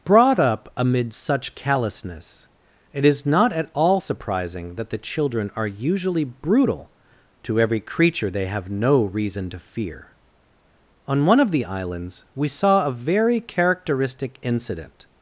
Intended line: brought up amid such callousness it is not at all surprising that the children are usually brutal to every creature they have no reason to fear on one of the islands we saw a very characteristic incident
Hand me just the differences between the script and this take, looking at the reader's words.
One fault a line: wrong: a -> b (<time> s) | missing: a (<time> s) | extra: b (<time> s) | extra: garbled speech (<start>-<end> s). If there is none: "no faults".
no faults